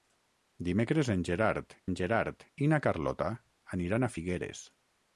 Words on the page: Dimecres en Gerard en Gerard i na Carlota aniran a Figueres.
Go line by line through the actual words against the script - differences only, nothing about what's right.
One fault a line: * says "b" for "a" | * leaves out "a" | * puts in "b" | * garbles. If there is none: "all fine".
all fine